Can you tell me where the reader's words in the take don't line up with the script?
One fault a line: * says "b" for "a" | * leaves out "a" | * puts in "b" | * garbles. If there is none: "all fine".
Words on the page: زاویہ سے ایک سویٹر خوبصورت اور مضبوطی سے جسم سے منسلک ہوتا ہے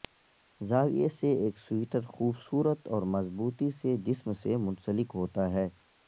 all fine